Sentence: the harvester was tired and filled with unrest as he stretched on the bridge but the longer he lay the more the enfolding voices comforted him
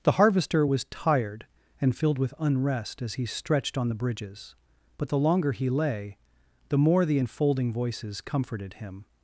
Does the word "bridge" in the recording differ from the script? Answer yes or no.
yes